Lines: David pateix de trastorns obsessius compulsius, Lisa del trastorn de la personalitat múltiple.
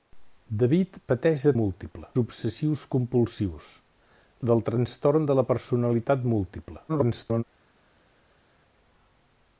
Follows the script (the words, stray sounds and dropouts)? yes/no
no